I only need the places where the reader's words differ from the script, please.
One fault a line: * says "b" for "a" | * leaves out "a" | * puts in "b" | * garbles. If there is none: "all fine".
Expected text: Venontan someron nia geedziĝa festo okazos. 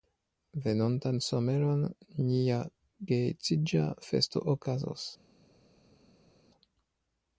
all fine